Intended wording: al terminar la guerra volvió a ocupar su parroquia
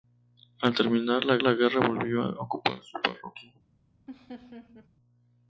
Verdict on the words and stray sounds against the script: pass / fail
fail